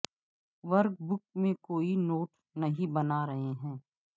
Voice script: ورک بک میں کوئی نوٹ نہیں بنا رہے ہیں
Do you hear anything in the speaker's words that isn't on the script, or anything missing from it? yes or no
no